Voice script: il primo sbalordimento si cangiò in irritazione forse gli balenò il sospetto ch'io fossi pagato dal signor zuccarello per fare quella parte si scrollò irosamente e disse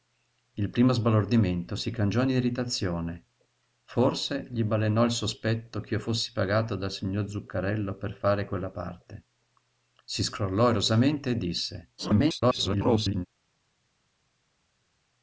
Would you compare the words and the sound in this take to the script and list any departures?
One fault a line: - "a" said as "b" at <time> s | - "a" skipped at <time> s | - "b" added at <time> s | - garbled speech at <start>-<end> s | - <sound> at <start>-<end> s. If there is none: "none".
- garbled speech at 12.0-13.3 s